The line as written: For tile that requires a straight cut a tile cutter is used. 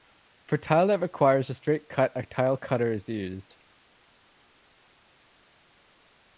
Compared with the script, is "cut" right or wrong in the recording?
right